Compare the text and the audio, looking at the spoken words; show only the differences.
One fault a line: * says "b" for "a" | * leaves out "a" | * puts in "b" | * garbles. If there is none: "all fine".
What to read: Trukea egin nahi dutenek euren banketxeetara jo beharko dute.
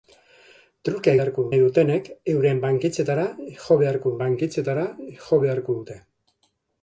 * says "beharko" for "egin"
* puts in "banketxeetara jo beharko"